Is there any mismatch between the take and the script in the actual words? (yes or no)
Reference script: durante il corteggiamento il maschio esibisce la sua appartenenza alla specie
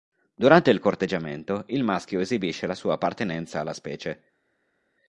no